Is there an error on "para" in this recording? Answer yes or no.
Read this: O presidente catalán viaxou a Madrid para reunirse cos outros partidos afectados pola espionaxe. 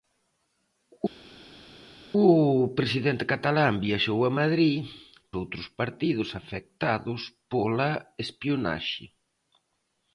yes